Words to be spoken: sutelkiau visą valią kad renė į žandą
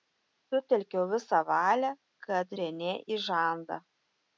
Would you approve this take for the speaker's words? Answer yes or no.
yes